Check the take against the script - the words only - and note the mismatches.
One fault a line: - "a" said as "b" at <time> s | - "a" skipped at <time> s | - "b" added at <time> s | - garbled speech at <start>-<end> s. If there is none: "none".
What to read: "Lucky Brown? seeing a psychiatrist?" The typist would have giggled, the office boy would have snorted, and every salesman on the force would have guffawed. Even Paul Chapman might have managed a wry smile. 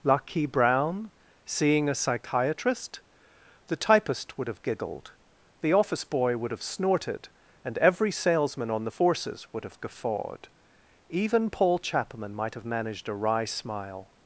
- "force" said as "forces" at 8.9 s